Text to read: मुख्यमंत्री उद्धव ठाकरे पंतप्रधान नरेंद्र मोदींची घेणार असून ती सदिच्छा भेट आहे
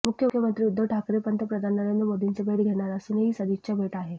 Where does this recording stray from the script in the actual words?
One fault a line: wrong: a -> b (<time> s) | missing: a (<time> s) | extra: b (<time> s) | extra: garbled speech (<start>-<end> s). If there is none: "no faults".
extra: भेट (2.4 s)
wrong: ती -> ही (3.2 s)